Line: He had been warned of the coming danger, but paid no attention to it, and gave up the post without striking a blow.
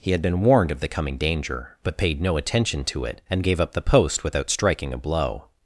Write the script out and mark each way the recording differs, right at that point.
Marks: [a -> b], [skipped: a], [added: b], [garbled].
He had been warned of the coming danger, but paid no attention to it, and gave up the post without striking a blow.